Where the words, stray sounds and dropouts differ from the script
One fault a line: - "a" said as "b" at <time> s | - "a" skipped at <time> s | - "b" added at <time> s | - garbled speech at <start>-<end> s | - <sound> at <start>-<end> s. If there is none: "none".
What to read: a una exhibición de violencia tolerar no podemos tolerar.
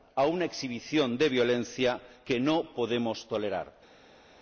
- "tolerar" said as "que" at 2.2 s